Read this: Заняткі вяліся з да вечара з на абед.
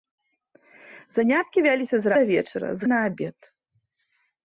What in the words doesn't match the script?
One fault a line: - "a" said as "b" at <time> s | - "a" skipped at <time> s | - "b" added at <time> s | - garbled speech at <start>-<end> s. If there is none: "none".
none